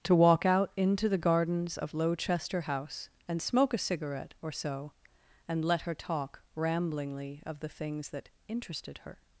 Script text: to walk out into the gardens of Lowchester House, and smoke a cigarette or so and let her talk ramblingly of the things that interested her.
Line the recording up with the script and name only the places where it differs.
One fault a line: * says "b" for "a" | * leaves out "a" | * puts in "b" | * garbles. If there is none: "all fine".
all fine